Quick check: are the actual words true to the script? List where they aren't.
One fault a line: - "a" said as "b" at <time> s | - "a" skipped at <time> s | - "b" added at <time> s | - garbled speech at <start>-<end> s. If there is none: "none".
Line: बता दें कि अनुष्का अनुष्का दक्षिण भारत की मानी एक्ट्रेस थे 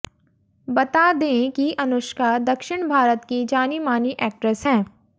- "अनुष्का" skipped at 2.4 s
- "जानी" added at 3.4 s
- "थे" said as "हैं" at 4.6 s